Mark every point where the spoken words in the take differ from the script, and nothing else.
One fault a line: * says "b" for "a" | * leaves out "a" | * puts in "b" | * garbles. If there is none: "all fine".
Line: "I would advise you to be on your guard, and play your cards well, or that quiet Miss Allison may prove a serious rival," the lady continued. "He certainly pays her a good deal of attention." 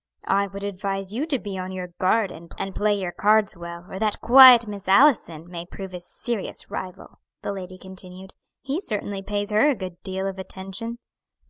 all fine